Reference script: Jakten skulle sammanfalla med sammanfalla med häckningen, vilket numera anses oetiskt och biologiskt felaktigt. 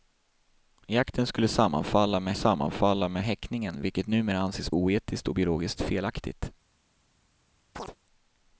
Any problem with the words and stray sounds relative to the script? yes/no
yes